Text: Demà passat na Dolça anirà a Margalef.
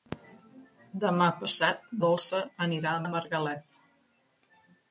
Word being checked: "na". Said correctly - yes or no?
no